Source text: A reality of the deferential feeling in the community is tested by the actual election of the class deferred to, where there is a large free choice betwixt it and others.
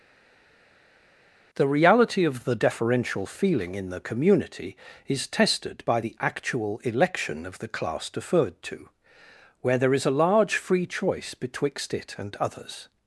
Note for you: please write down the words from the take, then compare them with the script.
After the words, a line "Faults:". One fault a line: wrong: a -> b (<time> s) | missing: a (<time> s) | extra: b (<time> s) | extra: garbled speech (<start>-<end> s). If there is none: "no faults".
The reality of the deferential feeling in the community is tested by the actual election of the class deferred to, where there is a large free choice betwixt it and others.
Faults:
wrong: A -> The (1.6 s)